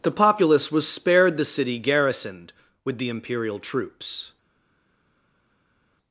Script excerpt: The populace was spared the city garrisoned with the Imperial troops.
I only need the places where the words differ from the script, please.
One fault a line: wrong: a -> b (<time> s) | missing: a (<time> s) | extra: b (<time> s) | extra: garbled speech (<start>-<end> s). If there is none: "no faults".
no faults